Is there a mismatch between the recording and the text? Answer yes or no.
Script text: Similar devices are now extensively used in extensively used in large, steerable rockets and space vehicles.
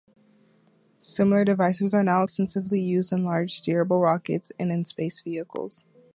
yes